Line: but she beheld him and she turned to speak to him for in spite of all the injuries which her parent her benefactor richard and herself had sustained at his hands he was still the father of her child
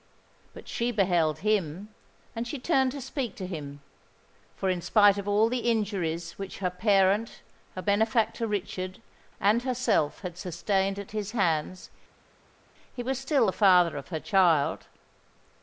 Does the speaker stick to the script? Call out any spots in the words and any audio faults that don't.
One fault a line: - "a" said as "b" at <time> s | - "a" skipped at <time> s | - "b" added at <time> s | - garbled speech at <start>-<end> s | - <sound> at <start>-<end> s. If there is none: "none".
none